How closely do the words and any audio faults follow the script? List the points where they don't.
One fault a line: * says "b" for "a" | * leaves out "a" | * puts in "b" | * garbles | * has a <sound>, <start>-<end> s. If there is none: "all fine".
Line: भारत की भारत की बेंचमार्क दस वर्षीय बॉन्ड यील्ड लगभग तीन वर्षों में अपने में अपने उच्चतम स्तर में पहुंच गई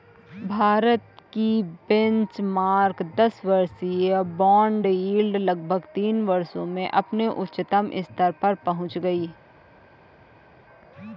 * leaves out "भारत की"
* leaves out "में अपने"
* says "पर" for "में"